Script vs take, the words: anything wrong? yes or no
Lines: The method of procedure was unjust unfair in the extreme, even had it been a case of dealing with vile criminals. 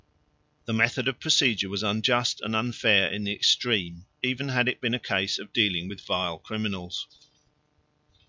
yes